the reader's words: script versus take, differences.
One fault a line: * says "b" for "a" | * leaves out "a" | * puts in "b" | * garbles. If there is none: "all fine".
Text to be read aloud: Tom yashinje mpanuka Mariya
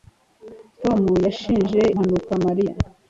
all fine